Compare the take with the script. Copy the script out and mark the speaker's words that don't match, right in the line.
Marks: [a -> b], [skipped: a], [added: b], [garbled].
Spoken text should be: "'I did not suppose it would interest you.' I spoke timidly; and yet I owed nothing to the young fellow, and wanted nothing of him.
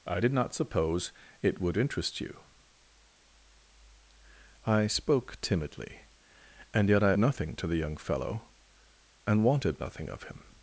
"'I did not suppose it would interest you.' I spoke timidly; and yet I [skipped: owed] nothing to the young fellow, and wanted nothing of him.